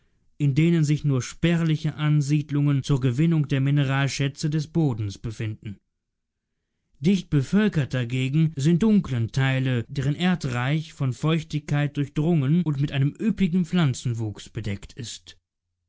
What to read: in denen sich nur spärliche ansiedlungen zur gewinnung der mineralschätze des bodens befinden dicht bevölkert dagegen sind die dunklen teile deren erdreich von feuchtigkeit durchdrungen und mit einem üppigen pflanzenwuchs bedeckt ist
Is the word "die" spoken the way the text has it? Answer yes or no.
no